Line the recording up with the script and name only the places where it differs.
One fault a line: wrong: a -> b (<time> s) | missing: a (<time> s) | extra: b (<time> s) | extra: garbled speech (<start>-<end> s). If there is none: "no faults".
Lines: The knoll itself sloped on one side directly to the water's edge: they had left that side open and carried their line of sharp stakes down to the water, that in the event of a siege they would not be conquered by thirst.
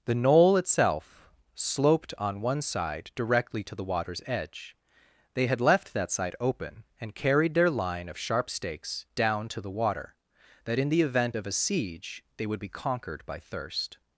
missing: not (12.6 s)